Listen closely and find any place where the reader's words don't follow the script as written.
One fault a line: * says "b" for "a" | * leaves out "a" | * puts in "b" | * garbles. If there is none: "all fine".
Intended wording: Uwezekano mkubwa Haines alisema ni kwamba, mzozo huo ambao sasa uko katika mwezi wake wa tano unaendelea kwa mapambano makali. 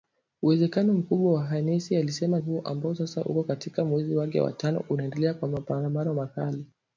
* leaves out "ni kwamba mzozo"